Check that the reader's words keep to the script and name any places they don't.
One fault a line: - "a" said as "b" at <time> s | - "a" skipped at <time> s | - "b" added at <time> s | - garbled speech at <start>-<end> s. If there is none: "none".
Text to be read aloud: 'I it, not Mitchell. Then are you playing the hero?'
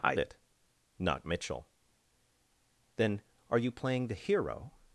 none